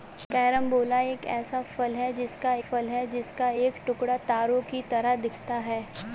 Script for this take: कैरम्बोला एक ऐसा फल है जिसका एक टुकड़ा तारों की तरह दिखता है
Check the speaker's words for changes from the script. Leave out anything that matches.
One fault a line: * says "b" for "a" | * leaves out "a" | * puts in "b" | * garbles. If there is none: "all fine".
* puts in "फल है जिसका"